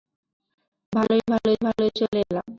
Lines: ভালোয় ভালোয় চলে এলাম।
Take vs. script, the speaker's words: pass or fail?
fail